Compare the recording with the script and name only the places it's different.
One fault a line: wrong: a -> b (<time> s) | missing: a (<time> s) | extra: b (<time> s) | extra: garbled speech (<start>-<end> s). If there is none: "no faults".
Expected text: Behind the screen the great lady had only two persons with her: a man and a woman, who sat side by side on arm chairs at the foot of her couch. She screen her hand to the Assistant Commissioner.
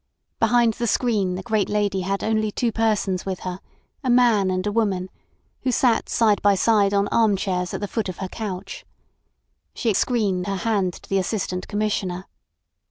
no faults